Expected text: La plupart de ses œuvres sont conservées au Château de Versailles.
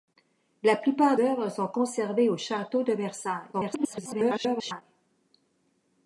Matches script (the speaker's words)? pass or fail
fail